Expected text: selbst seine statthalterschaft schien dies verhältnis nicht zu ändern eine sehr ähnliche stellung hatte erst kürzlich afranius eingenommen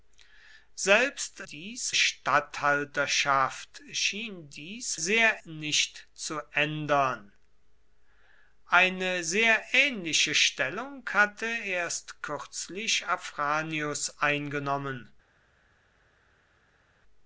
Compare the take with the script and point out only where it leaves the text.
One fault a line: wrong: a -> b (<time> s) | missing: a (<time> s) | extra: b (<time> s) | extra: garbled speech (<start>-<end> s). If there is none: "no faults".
wrong: seine -> dies (1.5 s)
wrong: verhältnis -> sehr (5.0 s)